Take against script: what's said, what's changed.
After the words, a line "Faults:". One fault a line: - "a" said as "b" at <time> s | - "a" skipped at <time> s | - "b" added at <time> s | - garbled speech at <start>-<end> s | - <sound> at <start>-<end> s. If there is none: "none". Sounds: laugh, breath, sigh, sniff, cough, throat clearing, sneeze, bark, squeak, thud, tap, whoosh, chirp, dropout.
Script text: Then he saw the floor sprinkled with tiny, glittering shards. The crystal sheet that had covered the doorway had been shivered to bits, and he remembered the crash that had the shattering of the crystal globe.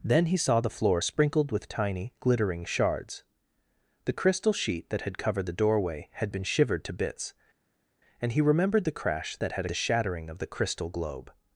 Then he saw the floor sprinkled with tiny, glittering shards. The crystal sheet that had covered the doorway had been shivered to bits, and he remembered the crash that had the shattering of the crystal globe.
Faults:
none